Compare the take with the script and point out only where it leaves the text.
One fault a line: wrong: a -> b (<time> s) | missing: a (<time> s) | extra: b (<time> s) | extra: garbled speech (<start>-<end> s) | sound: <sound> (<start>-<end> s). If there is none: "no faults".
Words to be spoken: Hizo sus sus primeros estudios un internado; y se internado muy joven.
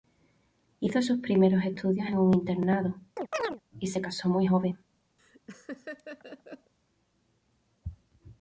missing: sus (1.2 s)
extra: en (2.1 s)
sound: chirp (3.2-3.6 s)
wrong: internado -> casó (4.0 s)
sound: laugh (5.2-6.7 s)